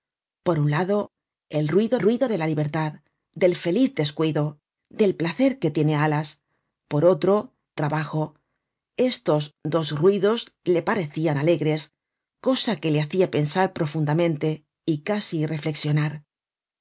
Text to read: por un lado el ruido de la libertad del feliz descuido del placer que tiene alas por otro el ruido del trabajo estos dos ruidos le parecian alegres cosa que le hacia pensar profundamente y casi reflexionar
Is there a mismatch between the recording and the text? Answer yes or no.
yes